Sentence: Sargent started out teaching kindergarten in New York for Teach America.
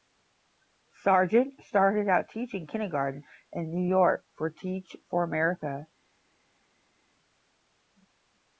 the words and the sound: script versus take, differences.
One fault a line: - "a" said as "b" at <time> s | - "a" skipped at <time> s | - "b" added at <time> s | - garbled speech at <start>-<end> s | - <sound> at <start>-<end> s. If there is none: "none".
- "for" added at 5.1 s